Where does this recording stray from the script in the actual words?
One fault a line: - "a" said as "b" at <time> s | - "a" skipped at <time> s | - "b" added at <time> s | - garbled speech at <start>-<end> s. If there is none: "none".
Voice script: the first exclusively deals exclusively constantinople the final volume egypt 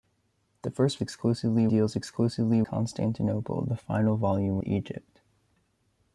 none